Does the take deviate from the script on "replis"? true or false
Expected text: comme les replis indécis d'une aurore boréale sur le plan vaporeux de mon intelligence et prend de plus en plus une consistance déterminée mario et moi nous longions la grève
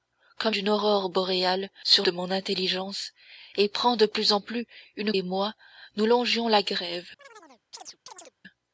true